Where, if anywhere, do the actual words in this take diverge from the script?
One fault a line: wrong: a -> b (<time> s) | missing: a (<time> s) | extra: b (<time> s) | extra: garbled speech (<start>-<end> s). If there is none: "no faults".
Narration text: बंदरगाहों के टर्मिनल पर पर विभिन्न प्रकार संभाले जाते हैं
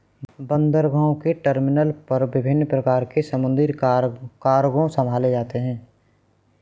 missing: पर (2.2 s)
extra: के समुद्री कार्गो (3.0 s)